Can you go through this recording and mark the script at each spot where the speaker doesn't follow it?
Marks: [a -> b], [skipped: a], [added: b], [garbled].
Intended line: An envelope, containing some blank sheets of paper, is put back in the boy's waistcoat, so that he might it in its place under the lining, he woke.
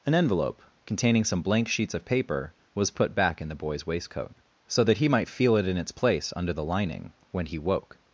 An envelope, containing some blank sheets of paper, [is -> was] put back in the boy's waistcoat, so that he might [added: feel] it in its place under the lining, [added: when] he woke.